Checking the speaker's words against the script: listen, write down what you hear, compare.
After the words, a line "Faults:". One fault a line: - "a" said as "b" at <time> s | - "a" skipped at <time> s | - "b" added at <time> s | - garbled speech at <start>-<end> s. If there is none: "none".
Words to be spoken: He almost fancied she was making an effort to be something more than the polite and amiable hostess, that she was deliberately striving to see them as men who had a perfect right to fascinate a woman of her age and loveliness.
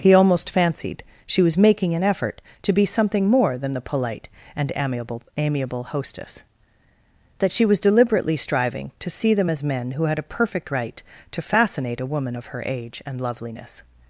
He almost fancied she was making an effort to be something more than the polite and amiable amiable hostess, that she was deliberately striving to see them as men who had a perfect right to fascinate a woman of her age and loveliness.
Faults:
- "amiable" added at 5.4 s